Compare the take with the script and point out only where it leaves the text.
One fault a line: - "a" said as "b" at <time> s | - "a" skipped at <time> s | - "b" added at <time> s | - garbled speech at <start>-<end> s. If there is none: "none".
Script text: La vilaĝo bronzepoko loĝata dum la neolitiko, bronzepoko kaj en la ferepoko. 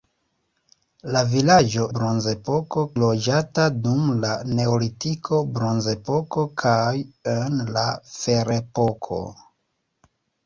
none